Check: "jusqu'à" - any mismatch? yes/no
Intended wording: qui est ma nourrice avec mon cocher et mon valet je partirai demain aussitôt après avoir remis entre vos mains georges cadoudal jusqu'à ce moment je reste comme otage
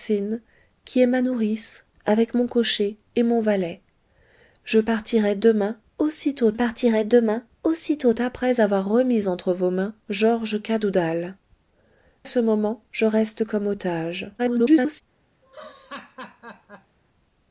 yes